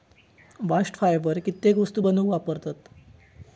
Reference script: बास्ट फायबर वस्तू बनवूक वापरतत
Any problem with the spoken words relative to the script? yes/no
yes